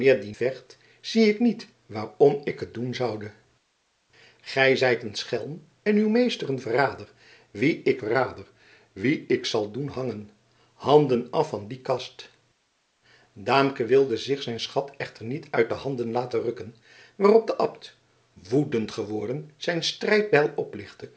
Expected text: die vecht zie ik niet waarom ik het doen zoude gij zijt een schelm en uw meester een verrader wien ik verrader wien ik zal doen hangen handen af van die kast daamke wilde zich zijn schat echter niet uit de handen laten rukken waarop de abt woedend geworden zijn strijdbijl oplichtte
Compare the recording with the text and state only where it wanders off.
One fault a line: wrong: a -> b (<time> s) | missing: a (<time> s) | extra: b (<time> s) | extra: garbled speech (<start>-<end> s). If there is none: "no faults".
no faults